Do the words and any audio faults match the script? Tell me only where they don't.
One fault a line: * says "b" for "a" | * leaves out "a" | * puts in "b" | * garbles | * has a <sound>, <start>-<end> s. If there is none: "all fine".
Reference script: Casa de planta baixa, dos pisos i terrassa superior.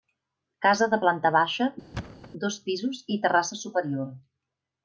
* has a thud, 1.9-2.3 s